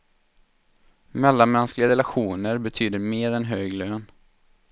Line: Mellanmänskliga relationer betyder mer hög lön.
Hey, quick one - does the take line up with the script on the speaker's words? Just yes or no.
no